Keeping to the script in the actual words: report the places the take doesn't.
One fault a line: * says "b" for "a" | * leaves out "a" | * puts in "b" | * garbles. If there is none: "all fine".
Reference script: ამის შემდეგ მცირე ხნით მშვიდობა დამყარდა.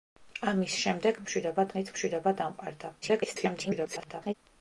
* says "მშვიდობა" for "მცირე"
* garbles